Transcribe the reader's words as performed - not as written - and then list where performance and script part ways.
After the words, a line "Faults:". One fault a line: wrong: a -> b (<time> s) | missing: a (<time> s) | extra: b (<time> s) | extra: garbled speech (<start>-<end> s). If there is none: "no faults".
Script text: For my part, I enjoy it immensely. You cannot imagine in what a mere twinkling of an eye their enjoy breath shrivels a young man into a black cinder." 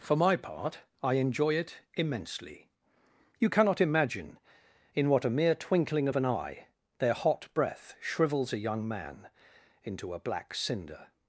For my part, I enjoy it immensely. You cannot imagine in what a mere twinkling of an eye their hot breath shrivels a young man into a black cinder."
Faults:
wrong: enjoy -> hot (7.1 s)